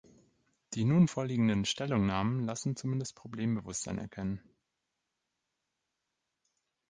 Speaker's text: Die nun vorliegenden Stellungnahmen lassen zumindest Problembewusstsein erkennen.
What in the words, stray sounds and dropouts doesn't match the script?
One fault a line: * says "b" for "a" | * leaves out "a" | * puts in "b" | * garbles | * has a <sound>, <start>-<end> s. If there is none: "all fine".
all fine